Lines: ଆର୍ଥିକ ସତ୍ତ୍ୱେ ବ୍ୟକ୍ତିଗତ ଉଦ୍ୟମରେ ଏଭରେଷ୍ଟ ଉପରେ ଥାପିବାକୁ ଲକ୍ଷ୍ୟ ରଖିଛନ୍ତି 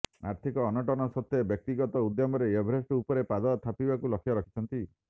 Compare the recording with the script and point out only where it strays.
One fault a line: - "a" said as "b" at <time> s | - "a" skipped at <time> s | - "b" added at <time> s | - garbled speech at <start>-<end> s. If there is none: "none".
- "ଅନଟନ" added at 0.7 s
- "ପାଦ" added at 3.3 s